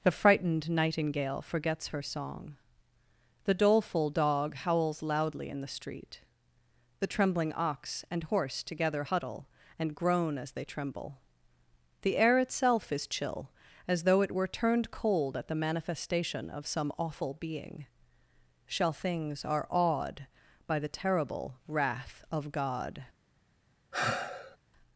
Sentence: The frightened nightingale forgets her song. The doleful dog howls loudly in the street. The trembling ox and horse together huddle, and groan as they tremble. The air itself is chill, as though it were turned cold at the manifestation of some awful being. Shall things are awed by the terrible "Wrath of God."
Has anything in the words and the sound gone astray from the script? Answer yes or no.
yes